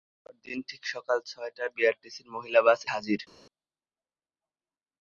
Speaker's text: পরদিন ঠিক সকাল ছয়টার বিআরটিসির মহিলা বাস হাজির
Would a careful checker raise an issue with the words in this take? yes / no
no